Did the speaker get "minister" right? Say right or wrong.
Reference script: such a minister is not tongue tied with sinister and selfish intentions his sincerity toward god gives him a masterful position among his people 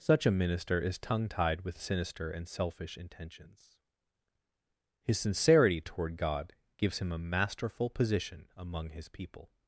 right